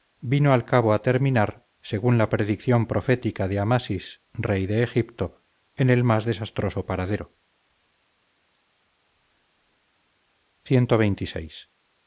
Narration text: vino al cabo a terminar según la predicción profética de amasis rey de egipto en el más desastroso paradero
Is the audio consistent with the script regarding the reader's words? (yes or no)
yes